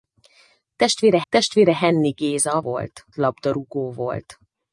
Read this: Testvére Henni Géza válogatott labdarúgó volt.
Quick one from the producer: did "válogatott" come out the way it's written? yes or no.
no